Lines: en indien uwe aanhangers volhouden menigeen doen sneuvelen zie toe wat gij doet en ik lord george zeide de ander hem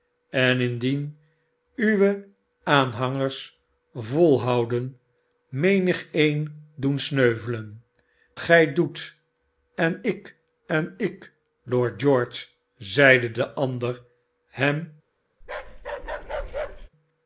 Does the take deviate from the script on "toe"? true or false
true